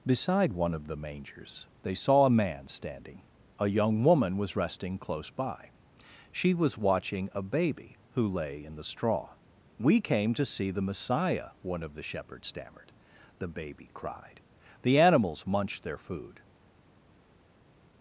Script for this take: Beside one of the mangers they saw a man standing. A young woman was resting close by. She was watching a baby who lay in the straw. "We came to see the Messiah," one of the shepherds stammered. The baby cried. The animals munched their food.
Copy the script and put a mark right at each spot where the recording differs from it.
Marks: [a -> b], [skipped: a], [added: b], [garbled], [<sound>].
Beside one of the mangers they saw a man standing. A young woman was resting close by. She was watching a baby who lay in the straw. "We came to see the Messiah," one of the shepherds stammered. The baby cried. The animals munched their food.